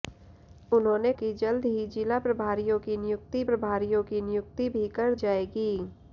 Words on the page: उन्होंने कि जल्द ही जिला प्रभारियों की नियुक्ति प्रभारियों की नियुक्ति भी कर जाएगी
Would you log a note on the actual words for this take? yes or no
no